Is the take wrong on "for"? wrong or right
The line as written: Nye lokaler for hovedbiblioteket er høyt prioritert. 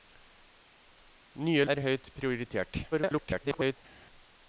wrong